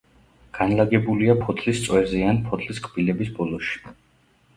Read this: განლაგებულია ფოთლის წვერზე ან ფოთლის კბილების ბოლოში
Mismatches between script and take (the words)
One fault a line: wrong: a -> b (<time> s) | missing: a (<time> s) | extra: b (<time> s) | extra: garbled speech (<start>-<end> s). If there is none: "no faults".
no faults